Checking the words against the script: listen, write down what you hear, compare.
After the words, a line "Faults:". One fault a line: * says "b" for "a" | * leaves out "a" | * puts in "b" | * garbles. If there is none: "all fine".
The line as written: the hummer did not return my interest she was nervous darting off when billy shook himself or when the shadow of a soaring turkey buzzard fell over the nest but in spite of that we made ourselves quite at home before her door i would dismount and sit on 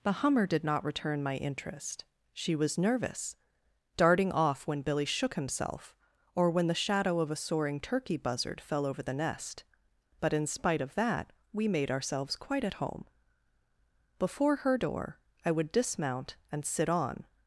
the hummer did not return my interest she was nervous darting off when billy shook himself or when the shadow of a soaring turkey buzzard fell over the nest but in spite of that we made ourselves quite at home before her door i would dismount and sit on
Faults:
all fine